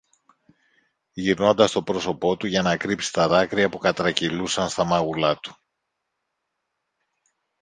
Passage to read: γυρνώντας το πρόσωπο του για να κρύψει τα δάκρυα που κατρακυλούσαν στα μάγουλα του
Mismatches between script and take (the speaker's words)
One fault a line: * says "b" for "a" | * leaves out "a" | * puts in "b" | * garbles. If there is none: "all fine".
all fine